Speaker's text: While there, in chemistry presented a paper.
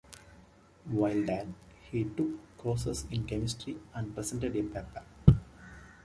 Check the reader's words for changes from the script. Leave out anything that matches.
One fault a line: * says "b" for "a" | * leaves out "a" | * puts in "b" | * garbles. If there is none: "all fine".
* puts in "he took courses"
* puts in "and"